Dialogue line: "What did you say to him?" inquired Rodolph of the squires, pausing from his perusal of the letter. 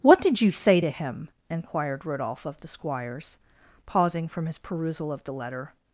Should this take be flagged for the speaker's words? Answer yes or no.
no